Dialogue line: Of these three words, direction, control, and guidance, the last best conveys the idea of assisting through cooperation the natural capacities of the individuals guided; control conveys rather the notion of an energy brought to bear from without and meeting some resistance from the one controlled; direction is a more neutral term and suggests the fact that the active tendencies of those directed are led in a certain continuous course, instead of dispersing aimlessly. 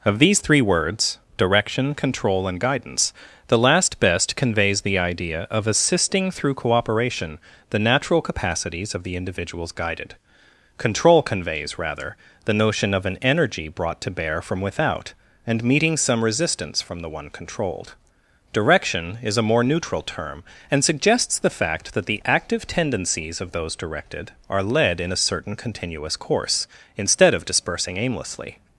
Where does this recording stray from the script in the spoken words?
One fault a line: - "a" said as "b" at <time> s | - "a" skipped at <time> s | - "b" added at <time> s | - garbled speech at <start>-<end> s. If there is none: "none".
none